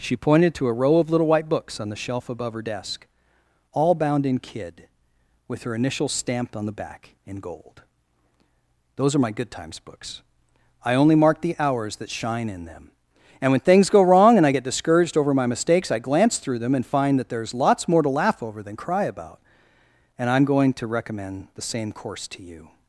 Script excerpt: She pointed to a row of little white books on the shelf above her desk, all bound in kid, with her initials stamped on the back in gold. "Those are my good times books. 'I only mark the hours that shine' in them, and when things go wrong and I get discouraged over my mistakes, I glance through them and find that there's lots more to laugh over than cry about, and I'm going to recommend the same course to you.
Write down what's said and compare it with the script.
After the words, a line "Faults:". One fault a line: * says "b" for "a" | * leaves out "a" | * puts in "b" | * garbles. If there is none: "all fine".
She pointed to a row of little white books on the shelf above her desk, all bound in kid, with her initials stamped on the back in gold. "Those are my good times books. 'I only mark the hours that shine' in them, and when things go wrong and I get discouraged over my mistakes, I glance through them and find that there's lots more to laugh over than cry about, and I'm going to recommend the same course to you.
Faults:
all fine